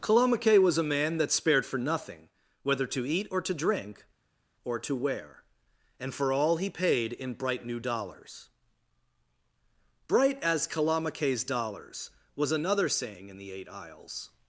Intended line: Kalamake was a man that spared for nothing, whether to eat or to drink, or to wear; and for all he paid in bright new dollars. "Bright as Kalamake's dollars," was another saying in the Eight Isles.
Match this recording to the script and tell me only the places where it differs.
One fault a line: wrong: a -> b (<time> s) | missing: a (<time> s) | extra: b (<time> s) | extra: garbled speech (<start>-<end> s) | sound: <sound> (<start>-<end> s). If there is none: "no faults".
no faults